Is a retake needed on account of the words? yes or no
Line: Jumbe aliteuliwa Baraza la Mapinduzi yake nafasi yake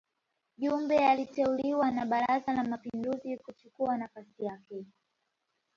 yes